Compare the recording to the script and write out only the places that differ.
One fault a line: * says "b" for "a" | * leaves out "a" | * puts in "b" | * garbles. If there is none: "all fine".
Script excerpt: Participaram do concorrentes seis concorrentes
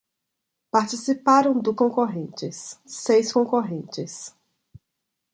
all fine